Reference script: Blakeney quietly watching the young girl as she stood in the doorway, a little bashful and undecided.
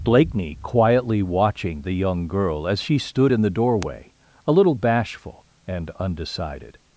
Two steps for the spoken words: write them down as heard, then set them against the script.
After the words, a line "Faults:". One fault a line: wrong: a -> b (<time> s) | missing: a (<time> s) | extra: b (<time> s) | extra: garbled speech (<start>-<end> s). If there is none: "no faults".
Blakeney quietly watching the young girl as she stood in the doorway, a little bashful and undecided.
Faults:
no faults